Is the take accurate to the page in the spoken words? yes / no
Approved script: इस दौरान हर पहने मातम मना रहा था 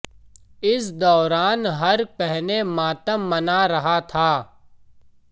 yes